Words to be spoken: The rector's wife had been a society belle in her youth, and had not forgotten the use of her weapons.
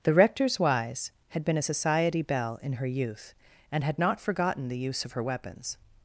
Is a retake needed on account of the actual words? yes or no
yes